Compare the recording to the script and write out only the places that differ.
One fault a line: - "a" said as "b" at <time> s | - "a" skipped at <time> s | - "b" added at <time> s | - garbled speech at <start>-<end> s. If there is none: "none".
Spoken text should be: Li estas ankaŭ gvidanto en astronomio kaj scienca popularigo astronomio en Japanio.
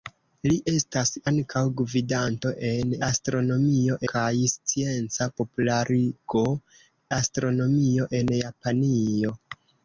none